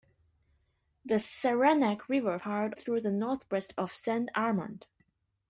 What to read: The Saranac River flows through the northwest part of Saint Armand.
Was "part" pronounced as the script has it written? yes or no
no